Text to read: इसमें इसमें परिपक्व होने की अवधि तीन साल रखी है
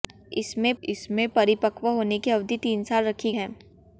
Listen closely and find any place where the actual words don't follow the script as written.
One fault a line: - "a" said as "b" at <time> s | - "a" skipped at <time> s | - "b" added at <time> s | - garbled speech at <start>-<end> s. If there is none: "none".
none